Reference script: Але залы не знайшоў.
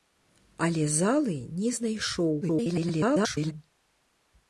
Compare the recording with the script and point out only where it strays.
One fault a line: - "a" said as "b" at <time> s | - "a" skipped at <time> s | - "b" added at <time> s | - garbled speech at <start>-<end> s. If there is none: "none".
- garbled speech at 2.4-3.5 s